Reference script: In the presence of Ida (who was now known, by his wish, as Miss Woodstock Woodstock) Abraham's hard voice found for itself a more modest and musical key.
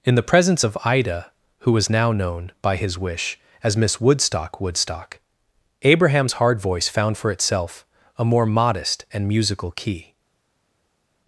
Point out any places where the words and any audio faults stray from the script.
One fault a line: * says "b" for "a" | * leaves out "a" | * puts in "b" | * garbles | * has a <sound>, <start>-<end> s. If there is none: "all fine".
all fine